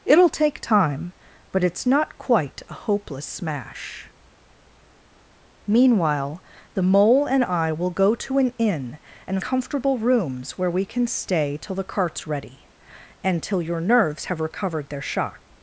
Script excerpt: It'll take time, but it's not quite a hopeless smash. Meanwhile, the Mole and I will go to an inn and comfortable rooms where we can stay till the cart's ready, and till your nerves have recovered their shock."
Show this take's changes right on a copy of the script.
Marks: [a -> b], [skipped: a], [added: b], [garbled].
It'll take time, but it's not quite a hopeless smash. Meanwhile, the Mole and I will go to an inn and comfortable rooms where we can stay till the cart's ready, and till your nerves have recovered their shock."